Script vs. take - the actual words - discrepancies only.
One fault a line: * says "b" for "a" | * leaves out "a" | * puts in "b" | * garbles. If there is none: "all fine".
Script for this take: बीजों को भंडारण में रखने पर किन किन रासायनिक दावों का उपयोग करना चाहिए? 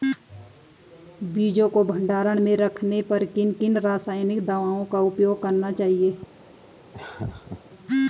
all fine